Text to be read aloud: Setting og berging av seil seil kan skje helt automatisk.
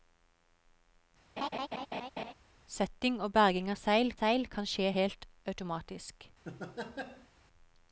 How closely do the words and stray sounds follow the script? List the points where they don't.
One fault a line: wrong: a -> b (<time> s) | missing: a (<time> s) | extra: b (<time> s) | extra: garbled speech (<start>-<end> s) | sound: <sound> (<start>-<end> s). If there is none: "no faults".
sound: laugh (1.4-2.3 s)
sound: laugh (6.4-7.3 s)